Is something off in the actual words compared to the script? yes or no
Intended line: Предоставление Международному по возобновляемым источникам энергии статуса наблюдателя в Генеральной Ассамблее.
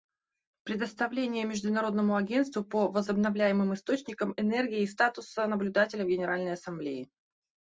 yes